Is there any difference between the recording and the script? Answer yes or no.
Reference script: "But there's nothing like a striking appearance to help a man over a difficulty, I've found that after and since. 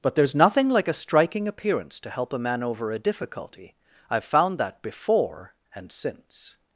yes